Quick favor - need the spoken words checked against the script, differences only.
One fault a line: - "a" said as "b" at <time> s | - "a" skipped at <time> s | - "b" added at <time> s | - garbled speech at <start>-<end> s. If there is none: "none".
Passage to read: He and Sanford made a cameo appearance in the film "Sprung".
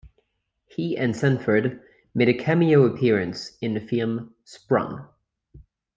none